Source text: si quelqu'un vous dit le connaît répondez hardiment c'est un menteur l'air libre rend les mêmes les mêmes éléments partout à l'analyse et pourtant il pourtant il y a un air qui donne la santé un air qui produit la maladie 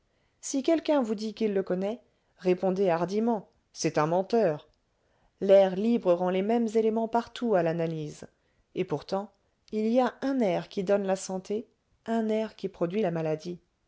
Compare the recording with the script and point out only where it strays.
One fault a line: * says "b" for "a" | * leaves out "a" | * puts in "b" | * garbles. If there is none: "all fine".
* puts in "qu'il"
* leaves out "les mêmes"
* leaves out "pourtant il"